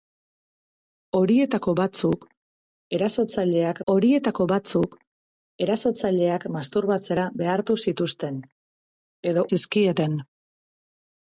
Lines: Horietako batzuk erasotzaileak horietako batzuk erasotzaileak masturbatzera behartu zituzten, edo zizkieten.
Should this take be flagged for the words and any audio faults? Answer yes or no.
no